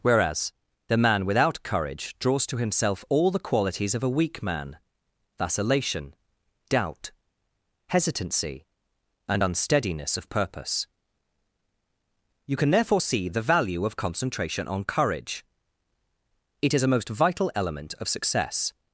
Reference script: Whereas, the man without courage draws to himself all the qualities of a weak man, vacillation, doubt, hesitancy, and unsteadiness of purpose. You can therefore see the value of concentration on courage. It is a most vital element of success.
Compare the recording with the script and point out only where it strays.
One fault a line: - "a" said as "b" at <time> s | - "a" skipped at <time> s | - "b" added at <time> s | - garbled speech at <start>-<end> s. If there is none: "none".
none